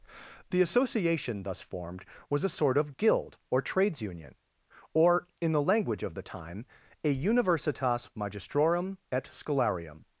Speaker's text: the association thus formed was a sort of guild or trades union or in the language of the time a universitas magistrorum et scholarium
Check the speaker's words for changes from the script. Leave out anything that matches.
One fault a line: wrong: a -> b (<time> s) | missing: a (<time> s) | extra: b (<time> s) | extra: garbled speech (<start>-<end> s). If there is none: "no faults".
no faults